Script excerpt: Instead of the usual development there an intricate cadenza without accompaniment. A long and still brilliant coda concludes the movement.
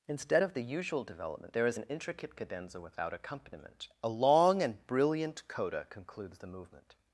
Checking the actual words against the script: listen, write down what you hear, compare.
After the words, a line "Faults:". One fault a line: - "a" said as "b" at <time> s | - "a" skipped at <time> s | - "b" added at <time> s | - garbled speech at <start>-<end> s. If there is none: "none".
Instead of the usual development there is an intricate cadenza without accompaniment. A long and brilliant coda concludes the movement.
Faults:
- "is" added at 1.7 s
- "still" skipped at 4.8 s